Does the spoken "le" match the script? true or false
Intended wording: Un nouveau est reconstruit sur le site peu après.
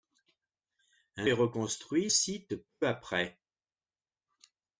false